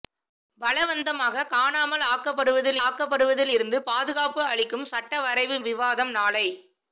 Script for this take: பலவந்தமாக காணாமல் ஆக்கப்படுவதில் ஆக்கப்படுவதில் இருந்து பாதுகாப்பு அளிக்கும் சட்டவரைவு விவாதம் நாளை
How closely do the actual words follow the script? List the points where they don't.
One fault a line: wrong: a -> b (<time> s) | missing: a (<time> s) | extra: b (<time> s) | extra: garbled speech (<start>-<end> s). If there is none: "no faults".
no faults